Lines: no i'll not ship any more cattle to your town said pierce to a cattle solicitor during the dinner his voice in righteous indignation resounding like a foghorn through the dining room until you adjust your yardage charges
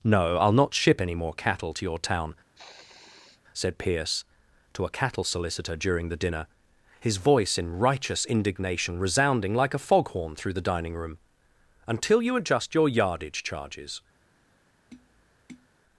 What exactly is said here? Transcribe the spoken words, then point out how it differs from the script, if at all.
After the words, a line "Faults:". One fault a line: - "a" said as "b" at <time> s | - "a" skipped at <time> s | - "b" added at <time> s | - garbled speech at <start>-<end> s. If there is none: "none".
no i'll not ship any more cattle to your town said pierce to a cattle solicitor during the dinner his voice in righteous indignation resounding like a foghorn through the dining room until you adjust your yardage charges
Faults:
none